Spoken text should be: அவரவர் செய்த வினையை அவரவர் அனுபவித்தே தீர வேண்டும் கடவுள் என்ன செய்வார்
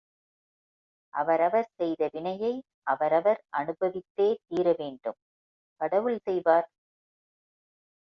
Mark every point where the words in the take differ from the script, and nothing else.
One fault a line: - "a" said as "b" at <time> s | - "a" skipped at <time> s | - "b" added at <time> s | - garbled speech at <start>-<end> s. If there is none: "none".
- "என்ன" skipped at 6.2 s